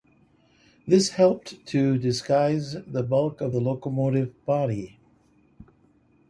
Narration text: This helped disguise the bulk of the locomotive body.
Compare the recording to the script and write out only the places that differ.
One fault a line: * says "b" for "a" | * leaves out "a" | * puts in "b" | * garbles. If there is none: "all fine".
* puts in "to"